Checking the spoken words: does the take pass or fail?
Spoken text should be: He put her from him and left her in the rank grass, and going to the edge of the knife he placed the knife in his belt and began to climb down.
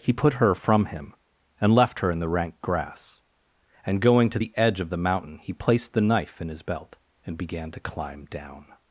fail